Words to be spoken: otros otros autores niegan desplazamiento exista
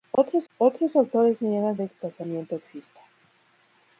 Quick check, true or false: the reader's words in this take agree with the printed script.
true